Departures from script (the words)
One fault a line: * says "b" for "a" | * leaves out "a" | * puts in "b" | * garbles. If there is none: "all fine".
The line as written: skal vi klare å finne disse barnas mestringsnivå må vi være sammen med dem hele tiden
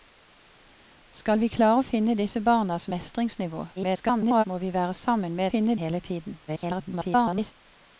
* garbles
* says "finne" for "dem"
* garbles